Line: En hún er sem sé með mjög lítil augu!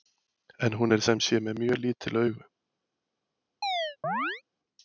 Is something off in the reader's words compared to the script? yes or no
no